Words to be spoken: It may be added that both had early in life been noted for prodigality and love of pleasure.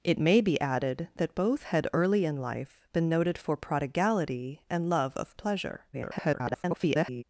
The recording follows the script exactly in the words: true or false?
false